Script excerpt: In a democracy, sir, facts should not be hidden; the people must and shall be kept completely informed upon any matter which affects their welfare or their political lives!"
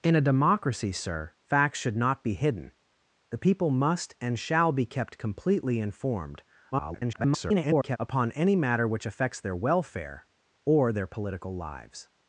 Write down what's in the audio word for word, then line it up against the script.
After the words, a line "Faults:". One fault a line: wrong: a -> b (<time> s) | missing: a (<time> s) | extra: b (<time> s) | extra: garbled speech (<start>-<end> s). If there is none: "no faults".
In a democracy, sir, facts should not be hidden; the people must and shall be kept completely informed [garbled] upon any matter which affects their welfare or their political lives!"
Faults:
extra: garbled speech (6.7-8.0 s)